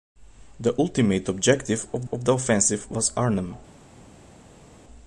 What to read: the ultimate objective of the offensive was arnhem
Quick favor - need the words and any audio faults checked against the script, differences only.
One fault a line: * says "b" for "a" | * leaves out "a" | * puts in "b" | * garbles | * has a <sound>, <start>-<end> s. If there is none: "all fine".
* puts in "of"